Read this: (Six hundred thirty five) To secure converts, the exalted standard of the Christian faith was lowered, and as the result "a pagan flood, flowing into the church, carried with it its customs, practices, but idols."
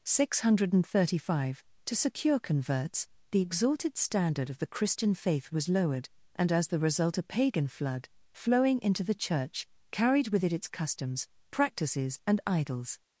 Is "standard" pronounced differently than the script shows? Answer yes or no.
no